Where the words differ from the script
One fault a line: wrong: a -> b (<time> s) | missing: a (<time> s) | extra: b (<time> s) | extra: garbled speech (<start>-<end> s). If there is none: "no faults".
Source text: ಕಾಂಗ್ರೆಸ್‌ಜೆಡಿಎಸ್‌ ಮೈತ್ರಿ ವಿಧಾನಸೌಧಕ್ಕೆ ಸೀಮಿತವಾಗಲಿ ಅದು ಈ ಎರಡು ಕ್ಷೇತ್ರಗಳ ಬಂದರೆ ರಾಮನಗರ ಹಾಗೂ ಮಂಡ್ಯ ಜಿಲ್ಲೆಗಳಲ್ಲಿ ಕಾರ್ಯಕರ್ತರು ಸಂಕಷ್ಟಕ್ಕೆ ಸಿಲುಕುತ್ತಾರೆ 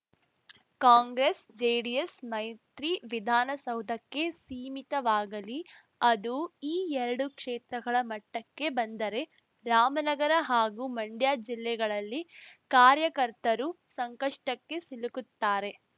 extra: ಮಟ್ಟಕ್ಕೆ (8.1 s)